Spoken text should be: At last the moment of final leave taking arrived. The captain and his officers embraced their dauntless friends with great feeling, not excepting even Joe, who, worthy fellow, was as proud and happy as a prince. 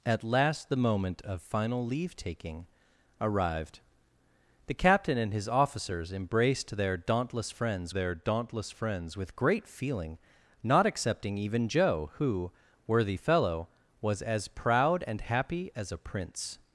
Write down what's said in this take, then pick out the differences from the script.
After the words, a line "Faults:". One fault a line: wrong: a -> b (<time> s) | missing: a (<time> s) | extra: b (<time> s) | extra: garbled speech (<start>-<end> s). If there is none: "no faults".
At last the moment of final leave taking arrived. The captain and his officers embraced their dauntless friends their dauntless friends with great feeling, not excepting even Joe, who, worthy fellow, was as proud and happy as a prince.
Faults:
extra: their dauntless friends (7.9 s)